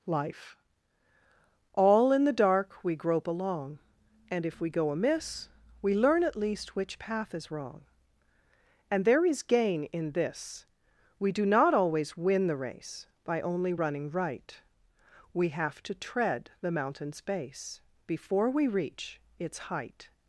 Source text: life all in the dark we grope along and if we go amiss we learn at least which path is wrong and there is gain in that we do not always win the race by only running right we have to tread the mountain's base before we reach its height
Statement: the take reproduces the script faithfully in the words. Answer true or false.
false